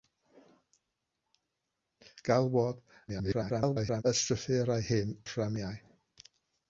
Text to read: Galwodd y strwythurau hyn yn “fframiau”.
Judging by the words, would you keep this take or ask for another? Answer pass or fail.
fail